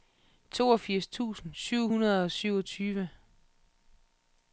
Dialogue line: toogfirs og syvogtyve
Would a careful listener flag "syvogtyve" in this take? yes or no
no